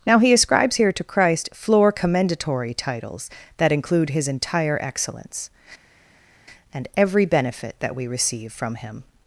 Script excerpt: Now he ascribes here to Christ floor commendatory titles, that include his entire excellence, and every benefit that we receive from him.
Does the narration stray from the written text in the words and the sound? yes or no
no